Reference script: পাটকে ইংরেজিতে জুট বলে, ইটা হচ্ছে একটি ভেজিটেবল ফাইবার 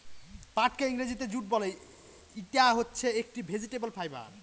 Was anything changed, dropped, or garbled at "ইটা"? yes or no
no